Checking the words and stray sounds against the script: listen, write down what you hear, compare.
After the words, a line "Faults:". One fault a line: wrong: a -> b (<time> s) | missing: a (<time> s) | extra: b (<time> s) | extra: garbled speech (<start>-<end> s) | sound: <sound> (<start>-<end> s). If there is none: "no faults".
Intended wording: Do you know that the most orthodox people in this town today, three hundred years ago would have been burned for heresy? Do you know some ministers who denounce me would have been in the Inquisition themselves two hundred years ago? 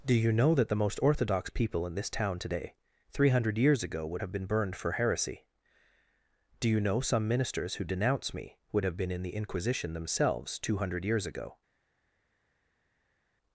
Do you know that the most orthodox people in this town today, three hundred years ago would have been burned for heresy? Do you know some ministers who denounce me would have been in the Inquisition themselves two hundred years ago?
Faults:
no faults